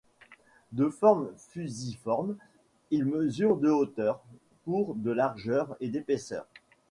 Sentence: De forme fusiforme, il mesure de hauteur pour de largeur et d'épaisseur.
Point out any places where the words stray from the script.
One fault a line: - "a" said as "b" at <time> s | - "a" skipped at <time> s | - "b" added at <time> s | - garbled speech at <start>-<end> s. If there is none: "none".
none